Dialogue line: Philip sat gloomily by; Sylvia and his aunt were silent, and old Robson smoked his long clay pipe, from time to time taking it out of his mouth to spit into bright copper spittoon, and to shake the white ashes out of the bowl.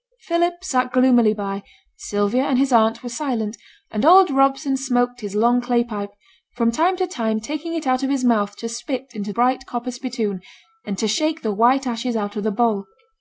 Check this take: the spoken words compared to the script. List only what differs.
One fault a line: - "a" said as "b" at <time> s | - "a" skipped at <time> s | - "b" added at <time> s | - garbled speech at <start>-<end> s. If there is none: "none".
none